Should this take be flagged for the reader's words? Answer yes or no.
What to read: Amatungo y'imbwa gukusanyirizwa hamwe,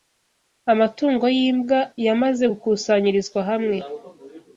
yes